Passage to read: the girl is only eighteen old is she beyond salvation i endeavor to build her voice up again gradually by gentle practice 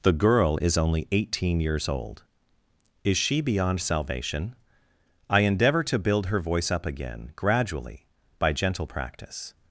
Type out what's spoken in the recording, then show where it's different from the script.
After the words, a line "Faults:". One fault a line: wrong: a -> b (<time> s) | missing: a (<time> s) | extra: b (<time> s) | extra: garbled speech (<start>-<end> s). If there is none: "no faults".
the girl is only eighteen years old is she beyond salvation i endeavor to build her voice up again gradually by gentle practice
Faults:
extra: years (1.6 s)